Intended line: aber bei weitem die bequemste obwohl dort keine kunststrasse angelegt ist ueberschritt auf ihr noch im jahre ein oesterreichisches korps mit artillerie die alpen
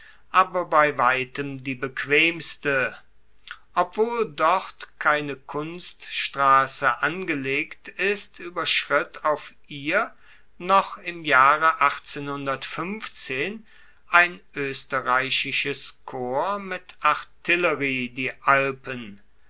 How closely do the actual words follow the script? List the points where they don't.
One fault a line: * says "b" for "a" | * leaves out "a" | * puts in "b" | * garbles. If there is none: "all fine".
all fine